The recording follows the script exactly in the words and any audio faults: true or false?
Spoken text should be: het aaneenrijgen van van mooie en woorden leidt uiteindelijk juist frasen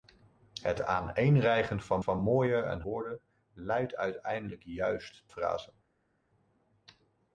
true